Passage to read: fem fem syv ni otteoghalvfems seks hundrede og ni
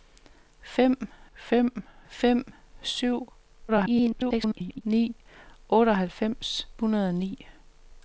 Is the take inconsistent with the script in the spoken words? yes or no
yes